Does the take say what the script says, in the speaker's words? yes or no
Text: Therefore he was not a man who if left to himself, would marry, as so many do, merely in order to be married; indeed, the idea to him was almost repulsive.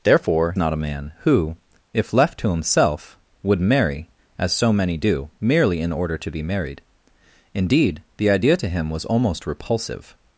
no